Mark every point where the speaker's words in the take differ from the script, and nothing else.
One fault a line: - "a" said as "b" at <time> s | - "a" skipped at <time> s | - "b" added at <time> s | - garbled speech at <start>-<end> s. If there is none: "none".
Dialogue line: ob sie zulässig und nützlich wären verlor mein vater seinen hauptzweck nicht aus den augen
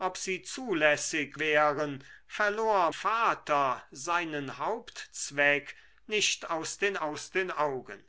- "und nützlich" skipped at 1.4 s
- "mein" skipped at 2.9 s
- "aus den" added at 7.0 s